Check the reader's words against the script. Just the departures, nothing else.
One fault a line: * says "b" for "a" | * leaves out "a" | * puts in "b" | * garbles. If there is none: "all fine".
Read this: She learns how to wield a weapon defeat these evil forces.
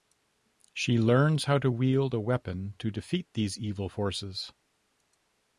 * puts in "to"